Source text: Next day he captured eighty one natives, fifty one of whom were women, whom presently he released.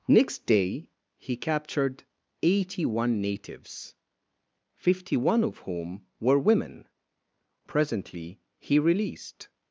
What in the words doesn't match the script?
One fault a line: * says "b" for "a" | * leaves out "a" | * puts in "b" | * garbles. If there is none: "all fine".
* leaves out "whom"